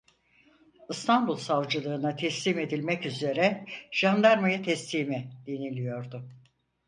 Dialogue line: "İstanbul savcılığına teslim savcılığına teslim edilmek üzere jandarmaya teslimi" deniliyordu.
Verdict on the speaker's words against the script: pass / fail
fail